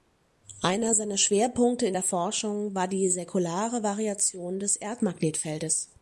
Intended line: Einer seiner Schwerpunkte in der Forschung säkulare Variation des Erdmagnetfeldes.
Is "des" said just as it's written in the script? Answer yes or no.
yes